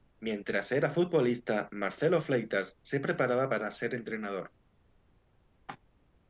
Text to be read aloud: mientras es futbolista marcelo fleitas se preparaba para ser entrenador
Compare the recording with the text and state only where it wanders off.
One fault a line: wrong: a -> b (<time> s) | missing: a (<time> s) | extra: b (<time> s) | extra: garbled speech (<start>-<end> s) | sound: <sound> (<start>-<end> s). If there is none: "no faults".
wrong: es -> era (0.7 s)